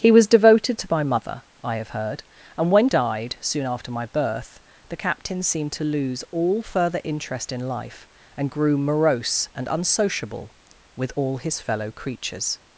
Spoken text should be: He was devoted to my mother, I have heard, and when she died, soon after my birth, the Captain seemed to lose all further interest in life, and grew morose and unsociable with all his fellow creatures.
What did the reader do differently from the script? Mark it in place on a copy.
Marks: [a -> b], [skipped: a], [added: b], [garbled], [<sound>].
He was devoted to my mother, I have heard, and when [skipped: she] died, soon after my birth, the Captain seemed to lose all further interest in life, and grew morose and unsociable with all his fellow creatures.